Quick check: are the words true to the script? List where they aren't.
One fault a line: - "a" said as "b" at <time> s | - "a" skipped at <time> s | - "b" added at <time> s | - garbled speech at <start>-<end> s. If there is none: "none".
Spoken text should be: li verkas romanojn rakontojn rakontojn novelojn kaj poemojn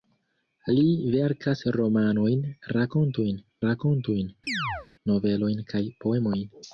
none